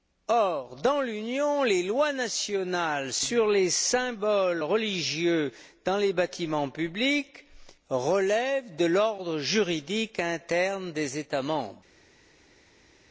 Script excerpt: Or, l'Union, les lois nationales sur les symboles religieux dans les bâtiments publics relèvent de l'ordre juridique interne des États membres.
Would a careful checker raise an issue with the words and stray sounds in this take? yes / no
yes